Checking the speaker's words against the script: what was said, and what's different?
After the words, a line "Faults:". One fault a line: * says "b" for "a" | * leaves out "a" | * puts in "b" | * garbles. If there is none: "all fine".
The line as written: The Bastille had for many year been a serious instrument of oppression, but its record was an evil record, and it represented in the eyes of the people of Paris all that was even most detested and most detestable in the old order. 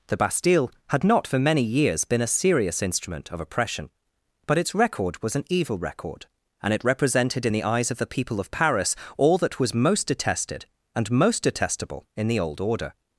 The Bastille had not for many years been a serious instrument of oppression, but its record was an evil record, and it represented in the eyes of the people of Paris all that was most detested and most detestable in the old order.
Faults:
* puts in "not"
* says "years" for "year"
* leaves out "even"